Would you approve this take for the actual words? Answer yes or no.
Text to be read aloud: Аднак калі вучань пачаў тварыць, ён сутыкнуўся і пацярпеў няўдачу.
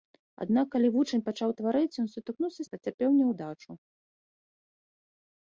yes